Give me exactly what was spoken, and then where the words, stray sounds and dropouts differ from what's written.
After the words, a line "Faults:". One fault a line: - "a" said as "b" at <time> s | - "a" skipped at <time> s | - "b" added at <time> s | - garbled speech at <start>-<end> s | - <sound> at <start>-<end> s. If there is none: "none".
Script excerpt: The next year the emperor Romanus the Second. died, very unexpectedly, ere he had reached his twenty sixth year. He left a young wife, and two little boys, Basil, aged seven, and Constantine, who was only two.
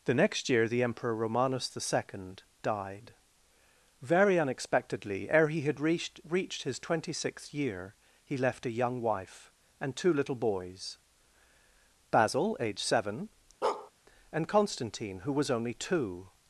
The next year the emperor Romanus the Second. died, very unexpectedly, ere he had reached reached his twenty sixth year. He left a young wife, and two little boys, Basil, aged seven, and Constantine, who was only two.
Faults:
- "reached" added at 6.3 s
- bark at 13.6-13.9 s